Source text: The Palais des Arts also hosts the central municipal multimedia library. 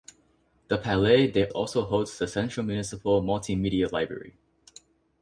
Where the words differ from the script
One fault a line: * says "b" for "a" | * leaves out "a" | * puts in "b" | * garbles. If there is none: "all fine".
* leaves out "Arts"